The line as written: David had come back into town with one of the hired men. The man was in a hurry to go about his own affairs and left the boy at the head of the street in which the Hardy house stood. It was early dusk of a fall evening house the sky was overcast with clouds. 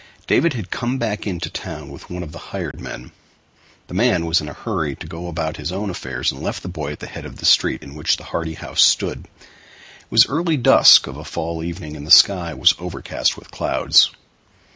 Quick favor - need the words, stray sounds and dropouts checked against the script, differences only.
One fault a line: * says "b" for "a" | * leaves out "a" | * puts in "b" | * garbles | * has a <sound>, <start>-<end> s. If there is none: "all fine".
* has a dropout, 2.7-2.7 s
* says "and" for "house"